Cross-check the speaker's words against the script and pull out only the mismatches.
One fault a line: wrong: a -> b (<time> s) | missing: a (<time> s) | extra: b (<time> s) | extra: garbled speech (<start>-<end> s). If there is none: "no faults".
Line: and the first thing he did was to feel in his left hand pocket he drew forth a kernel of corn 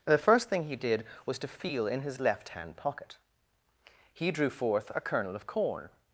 missing: and (0.1 s)